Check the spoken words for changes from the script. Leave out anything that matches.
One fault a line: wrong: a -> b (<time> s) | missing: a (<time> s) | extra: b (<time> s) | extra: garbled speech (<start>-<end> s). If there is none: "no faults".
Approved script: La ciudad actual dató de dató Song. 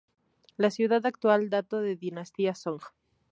wrong: dató -> dinastía (1.9 s)